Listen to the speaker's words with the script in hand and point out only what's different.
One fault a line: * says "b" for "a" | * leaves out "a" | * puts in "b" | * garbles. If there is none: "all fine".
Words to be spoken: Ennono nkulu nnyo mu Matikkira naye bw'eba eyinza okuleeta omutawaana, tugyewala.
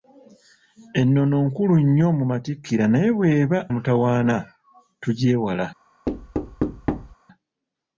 * leaves out "eyinza okuleeta"